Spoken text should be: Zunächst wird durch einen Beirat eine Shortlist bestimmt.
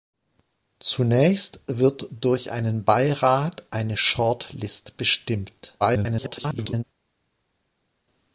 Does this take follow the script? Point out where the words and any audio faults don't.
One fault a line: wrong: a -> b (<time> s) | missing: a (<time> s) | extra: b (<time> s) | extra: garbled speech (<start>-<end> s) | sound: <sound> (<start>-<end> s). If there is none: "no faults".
extra: garbled speech (5.8-6.8 s)